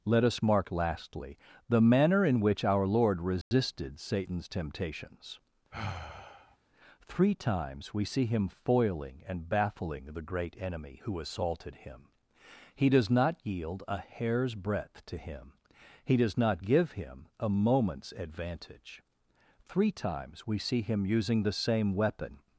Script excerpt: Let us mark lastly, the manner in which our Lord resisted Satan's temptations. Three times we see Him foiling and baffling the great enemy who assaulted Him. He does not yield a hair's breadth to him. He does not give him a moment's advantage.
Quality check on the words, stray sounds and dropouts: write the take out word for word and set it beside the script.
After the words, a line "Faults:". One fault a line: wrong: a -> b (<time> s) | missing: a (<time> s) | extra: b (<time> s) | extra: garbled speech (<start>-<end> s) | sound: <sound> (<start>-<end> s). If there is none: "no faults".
Let us mark lastly, the manner in which our Lord resisted Satan's temptations. Three times we see Him foiling and baffling the great enemy who assaulted Him. He does not yield a hair's breadth to him. He does not give him a moment's advantage. Three times we see Him using the same weapon
Faults:
sound: dropout (3.4-3.5 s)
sound: sigh (5.7-6.6 s)
extra: Three times we see Him using the same weapon (19.6 s)